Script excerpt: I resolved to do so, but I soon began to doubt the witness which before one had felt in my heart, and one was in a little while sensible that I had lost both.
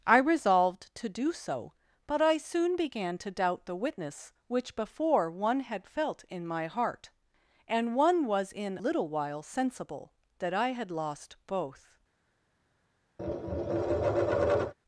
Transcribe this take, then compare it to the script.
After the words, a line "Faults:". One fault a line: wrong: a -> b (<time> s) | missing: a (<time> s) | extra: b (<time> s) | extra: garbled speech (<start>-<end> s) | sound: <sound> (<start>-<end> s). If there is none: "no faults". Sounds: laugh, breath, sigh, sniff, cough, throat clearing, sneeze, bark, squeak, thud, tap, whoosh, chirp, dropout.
I resolved to do so, but I soon began to doubt the witness which before one had felt in my heart, and one was in little while sensible that I had lost both.
Faults:
missing: a (8.8 s)
sound: tap (13.2-14.7 s)